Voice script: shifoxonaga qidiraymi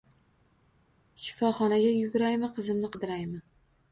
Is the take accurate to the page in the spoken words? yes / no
no